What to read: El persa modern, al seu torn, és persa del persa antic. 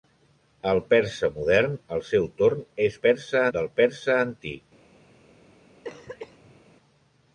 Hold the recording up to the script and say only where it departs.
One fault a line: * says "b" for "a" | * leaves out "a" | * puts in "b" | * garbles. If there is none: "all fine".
all fine